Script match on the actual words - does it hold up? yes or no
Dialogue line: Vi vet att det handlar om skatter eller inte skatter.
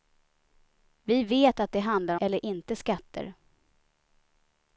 no